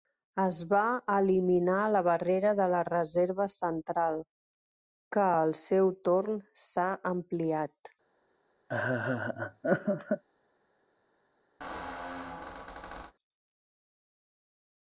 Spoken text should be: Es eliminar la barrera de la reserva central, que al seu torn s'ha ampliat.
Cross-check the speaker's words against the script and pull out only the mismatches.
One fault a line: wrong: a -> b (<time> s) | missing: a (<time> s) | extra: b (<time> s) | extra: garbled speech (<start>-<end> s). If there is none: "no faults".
extra: va (0.7 s)